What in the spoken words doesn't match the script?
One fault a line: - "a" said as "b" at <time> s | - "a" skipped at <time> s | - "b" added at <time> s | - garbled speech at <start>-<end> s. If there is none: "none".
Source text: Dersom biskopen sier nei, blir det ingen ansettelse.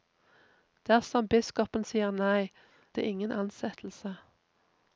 - "blir" skipped at 2.5 s